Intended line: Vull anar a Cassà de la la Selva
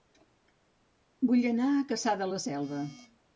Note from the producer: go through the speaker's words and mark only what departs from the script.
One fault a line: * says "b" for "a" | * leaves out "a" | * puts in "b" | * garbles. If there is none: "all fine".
* leaves out "la"